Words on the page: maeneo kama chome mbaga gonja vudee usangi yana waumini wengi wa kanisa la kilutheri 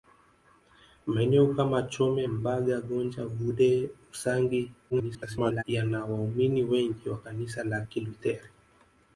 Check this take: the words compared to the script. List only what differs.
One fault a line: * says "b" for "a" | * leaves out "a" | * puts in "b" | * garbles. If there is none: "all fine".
* garbles